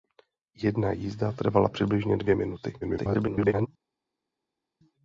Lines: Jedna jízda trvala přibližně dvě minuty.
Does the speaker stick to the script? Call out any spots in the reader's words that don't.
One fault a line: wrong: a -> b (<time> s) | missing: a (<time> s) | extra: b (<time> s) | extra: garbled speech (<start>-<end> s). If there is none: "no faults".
extra: garbled speech (2.8-3.7 s)